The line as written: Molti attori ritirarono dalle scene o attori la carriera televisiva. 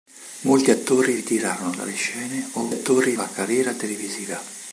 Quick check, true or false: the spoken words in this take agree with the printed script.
true